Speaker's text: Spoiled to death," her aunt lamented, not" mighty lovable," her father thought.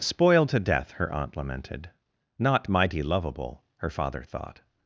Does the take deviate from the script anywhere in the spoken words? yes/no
no